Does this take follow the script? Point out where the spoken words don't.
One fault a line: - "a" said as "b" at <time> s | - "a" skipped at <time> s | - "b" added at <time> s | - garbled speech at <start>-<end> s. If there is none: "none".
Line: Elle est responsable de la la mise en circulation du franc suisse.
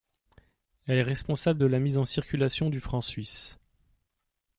- "la" skipped at 1.8 s